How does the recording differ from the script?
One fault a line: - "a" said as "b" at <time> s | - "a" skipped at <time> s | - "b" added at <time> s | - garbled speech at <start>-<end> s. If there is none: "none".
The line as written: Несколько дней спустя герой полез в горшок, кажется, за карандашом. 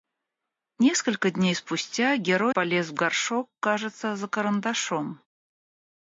none